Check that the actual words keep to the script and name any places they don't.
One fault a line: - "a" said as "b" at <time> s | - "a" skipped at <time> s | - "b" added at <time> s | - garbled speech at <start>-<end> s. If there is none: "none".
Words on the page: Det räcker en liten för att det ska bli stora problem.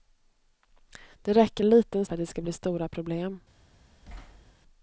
none